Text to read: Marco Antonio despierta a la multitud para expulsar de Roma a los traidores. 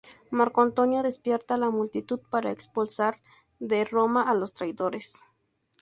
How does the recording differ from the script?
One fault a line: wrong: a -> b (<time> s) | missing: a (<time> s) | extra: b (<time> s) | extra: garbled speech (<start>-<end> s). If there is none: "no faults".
no faults